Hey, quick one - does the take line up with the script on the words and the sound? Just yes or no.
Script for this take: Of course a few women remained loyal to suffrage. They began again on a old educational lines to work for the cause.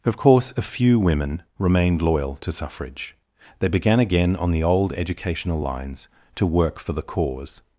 no